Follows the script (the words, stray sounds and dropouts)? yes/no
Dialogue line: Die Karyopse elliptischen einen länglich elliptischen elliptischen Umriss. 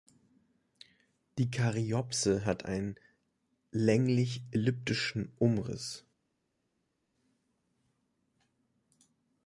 no